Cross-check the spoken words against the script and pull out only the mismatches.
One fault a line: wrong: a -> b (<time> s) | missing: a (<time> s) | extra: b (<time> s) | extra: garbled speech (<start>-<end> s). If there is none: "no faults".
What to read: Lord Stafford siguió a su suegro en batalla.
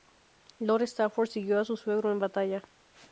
no faults